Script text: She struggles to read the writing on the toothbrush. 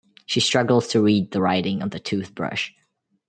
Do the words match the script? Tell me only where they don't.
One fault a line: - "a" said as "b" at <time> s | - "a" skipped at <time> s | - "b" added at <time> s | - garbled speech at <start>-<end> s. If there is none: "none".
none